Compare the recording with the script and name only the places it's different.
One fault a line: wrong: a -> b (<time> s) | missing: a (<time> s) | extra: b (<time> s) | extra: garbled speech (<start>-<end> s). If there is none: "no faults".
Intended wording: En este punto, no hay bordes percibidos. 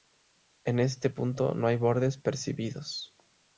no faults